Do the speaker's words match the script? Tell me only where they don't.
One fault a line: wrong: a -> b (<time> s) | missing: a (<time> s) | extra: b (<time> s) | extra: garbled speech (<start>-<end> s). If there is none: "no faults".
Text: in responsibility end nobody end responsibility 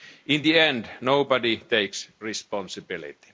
wrong: responsibility -> the (0.4 s)
wrong: end -> takes (1.6 s)